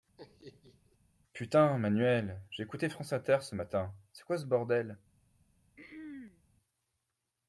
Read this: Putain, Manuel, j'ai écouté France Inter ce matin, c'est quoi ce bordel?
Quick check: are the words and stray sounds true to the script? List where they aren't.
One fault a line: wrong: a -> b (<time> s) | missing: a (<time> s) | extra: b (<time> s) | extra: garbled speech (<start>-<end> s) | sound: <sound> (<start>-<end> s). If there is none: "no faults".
sound: laugh (0.2-1.0 s)
sound: throat clearing (5.8-6.4 s)